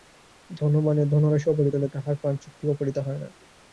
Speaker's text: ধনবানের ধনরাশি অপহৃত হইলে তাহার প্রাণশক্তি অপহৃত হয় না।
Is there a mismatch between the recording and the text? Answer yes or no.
no